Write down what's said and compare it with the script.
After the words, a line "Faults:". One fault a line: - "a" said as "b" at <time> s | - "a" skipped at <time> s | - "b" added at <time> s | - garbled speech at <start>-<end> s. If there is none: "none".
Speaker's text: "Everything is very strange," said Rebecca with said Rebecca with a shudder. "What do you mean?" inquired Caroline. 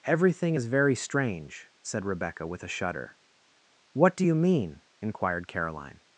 "Everything is very strange," said Rebecca with a shudder. "What do you mean?" inquired Caroline.
Faults:
- "said Rebecca with" skipped at 2.6 s